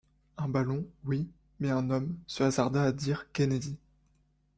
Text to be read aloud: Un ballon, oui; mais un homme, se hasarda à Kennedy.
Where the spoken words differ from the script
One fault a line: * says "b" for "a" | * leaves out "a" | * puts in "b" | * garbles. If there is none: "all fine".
* puts in "dire"